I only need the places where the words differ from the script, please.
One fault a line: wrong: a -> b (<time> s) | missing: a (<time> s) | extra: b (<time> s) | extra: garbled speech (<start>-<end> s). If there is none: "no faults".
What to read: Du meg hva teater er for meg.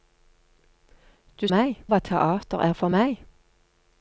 no faults